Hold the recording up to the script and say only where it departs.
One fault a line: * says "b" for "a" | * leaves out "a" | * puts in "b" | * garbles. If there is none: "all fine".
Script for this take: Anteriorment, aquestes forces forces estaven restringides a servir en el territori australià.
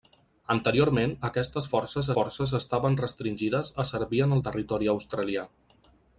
all fine